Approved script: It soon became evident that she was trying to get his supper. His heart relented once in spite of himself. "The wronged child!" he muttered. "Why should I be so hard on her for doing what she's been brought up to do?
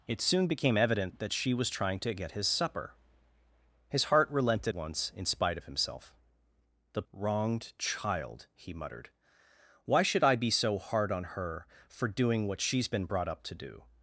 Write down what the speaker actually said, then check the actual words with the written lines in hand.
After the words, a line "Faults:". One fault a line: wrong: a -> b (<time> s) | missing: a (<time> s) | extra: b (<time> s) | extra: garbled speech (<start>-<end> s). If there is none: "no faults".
It soon became evident that she was trying to get his supper. His heart relented once in spite of himself. "The wronged child!" he muttered. "Why should I be so hard on her for doing what she's been brought up to do?
Faults:
no faults